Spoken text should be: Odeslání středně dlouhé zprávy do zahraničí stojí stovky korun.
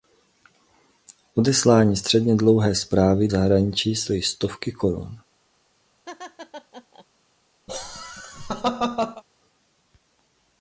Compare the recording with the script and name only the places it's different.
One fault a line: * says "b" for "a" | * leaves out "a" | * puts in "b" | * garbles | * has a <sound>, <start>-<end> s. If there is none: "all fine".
* leaves out "do"
* has a laugh, 6.1-7.1 s
* has a laugh, 7.7-9.2 s